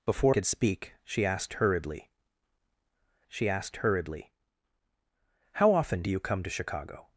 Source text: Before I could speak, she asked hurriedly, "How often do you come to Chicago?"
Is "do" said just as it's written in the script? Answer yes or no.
yes